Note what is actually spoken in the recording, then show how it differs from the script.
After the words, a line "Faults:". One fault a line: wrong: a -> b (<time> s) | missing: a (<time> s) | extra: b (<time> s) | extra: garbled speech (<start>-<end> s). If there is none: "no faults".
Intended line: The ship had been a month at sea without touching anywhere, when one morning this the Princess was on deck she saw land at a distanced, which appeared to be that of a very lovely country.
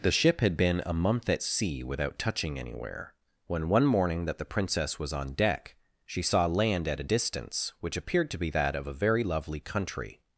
The ship had been a month at sea without touching anywhere, when one morning that the Princess was on deck she saw land at a distance, which appeared to be that of a very lovely country.
Faults:
wrong: this -> that (4.2 s)
wrong: distanced -> distance (7.0 s)